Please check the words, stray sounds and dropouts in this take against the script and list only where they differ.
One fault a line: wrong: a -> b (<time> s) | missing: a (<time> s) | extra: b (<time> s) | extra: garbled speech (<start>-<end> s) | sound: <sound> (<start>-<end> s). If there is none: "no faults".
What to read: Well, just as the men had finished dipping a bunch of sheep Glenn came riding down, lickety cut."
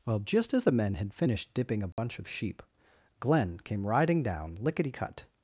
sound: dropout (1.9-2.0 s)